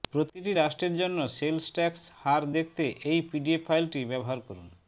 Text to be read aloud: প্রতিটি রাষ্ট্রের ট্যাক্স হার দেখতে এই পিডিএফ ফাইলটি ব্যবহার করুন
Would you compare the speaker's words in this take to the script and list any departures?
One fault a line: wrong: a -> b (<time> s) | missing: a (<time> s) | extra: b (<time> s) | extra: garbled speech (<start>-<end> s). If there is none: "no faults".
extra: জন্য সেলস (1.0 s)